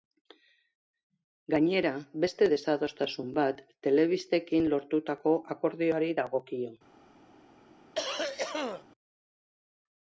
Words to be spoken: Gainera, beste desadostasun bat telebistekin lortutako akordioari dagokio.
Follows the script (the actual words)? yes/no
yes